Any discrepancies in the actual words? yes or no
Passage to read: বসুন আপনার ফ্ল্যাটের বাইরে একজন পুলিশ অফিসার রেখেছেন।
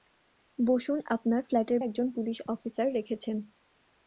yes